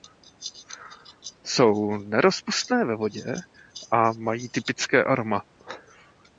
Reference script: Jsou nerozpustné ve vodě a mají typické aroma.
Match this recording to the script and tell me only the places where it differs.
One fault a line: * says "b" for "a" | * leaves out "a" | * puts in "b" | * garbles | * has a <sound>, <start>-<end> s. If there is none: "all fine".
all fine